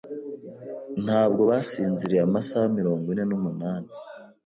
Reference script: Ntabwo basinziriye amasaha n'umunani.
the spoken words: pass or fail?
fail